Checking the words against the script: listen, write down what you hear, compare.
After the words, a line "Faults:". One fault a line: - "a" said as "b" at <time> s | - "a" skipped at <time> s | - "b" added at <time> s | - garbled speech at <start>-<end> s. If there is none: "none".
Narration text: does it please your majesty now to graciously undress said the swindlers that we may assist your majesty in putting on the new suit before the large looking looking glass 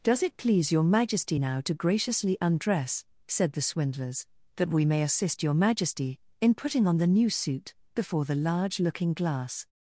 does it please your majesty now to graciously undress said the swindlers that we may assist your majesty in putting on the new suit before the large looking glass
Faults:
- "looking" skipped at 9.1 s